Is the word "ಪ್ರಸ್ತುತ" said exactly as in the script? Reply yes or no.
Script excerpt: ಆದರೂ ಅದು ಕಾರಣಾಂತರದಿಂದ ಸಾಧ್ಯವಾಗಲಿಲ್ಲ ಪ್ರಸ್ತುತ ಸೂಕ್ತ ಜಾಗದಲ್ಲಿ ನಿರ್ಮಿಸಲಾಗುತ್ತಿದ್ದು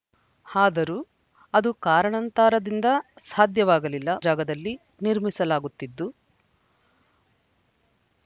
no